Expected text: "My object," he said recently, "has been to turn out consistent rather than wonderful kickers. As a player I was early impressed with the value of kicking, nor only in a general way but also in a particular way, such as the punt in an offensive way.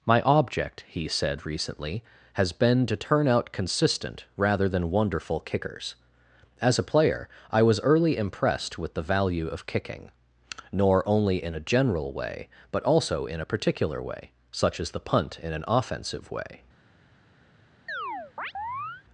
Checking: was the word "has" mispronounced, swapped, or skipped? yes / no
no